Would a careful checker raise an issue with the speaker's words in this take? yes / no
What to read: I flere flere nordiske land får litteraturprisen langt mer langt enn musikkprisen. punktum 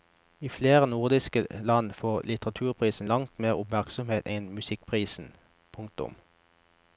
yes